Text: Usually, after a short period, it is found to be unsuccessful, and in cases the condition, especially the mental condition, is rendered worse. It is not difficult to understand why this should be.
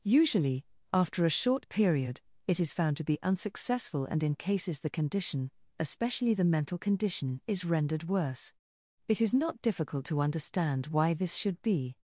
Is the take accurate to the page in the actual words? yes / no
yes